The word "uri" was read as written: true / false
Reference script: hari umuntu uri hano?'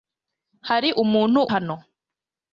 false